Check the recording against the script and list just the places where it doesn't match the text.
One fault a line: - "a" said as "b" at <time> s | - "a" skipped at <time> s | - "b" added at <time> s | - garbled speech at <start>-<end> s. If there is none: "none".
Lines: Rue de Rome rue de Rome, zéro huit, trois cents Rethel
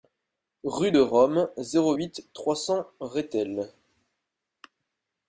- "rue de Rome" skipped at 1.5 s